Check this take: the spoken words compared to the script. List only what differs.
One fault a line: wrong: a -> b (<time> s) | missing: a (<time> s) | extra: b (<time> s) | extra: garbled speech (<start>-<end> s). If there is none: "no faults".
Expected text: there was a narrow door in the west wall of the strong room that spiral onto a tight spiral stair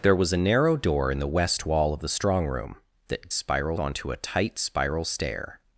no faults